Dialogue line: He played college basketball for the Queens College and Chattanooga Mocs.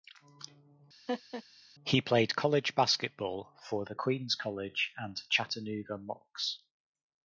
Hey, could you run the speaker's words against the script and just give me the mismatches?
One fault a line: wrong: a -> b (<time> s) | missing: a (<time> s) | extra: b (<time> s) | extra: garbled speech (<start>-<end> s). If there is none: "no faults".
no faults